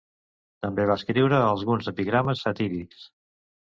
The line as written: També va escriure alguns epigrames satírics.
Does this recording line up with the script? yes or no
yes